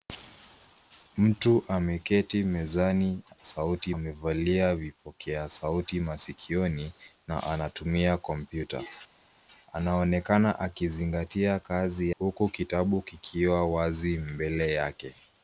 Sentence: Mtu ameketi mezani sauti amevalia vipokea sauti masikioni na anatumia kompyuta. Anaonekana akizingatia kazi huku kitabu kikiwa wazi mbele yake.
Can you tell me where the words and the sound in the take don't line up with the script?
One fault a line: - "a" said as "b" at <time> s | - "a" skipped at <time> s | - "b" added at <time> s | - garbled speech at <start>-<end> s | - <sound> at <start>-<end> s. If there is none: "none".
none